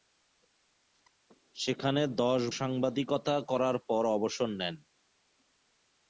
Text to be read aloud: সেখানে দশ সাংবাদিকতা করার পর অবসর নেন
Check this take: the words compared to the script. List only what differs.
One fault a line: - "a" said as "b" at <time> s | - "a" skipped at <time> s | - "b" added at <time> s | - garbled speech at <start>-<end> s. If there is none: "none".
none